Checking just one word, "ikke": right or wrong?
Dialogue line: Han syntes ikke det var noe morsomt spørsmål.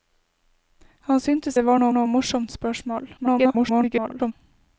wrong